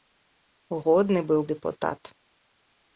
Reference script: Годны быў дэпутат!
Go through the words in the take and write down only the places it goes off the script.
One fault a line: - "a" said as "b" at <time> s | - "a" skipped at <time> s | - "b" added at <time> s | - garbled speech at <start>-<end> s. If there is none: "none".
none